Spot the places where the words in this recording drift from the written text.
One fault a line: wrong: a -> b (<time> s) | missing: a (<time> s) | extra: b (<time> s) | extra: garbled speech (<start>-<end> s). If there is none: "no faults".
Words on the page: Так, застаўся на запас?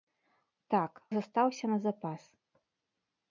no faults